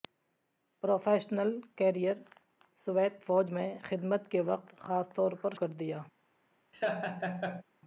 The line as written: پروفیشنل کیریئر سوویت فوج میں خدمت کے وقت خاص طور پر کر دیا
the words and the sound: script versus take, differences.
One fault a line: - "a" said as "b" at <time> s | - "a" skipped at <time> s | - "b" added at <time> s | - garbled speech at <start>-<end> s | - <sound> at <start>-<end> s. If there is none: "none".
- laugh at 6.7-7.6 s